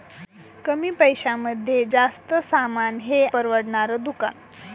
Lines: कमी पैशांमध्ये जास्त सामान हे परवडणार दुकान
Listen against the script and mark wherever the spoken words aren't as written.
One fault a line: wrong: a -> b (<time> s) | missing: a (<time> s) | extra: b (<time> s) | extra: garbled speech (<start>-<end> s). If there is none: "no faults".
no faults